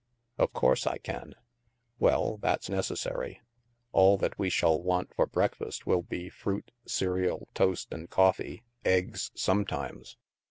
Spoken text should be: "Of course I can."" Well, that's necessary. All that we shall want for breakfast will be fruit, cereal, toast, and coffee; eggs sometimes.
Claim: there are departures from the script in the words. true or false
false